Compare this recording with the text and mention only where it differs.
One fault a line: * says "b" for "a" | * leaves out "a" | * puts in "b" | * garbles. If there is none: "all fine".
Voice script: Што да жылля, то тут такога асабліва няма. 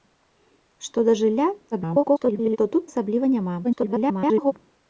* garbles
* leaves out "такога"
* garbles